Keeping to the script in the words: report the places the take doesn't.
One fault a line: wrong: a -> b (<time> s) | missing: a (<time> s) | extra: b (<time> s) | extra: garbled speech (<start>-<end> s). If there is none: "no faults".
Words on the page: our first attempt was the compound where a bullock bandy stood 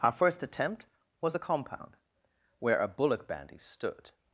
no faults